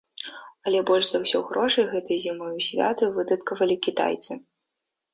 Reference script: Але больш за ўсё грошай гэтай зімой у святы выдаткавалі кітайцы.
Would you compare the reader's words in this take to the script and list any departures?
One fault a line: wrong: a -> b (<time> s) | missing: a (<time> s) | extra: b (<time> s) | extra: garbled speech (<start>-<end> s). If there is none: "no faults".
no faults